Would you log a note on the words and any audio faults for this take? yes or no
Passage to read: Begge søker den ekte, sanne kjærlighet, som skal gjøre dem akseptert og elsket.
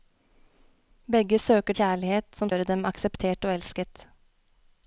yes